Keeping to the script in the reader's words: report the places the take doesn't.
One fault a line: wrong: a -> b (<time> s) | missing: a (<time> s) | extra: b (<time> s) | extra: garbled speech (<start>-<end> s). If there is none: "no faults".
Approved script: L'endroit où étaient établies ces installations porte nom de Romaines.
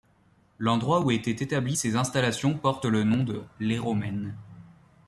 extra: le (2.8 s)
extra: Les (3.6 s)